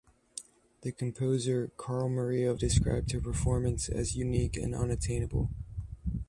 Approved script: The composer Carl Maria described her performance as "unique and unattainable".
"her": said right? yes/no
yes